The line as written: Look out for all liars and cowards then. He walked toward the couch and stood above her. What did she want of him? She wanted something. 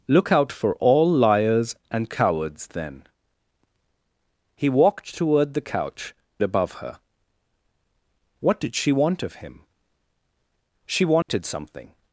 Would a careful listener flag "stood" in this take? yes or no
yes